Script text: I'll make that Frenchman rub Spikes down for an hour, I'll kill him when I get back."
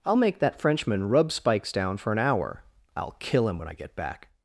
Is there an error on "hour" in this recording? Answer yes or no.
no